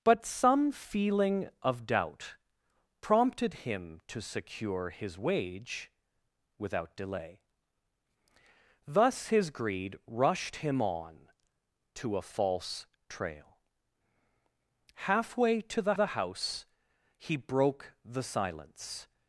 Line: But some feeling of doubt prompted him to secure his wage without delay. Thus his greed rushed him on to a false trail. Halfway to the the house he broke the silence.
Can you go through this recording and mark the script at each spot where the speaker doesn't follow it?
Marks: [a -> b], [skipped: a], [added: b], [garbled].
But some feeling of doubt prompted him to secure his wage without delay. Thus his greed rushed him on to a false trail. Halfway to the the house he broke the silence.